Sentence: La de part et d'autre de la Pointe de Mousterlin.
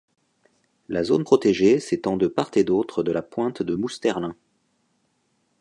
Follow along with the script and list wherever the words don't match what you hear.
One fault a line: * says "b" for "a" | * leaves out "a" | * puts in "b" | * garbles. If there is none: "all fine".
* puts in "zone protégée s'étend"